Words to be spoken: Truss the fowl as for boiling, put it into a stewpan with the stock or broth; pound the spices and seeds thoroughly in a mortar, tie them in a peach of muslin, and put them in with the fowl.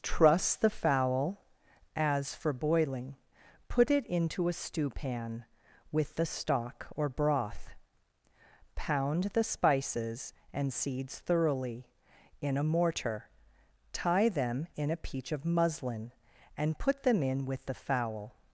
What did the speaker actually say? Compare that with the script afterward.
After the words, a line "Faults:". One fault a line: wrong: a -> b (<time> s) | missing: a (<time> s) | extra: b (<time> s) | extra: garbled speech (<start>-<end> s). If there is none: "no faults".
Truss the fowl as for boiling, put it into a stewpan with the stock or broth; pound the spices and seeds thoroughly in a mortar, tie them in a peach of muslin, and put them in with the fowl.
Faults:
no faults